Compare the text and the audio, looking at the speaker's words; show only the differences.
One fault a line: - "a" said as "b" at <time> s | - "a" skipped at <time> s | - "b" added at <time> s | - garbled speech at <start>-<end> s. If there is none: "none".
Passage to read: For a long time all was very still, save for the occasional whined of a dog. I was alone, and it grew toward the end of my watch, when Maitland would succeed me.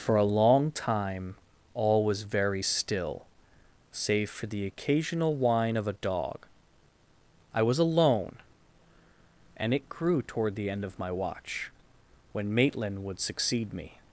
- "whined" said as "whine" at 5.3 s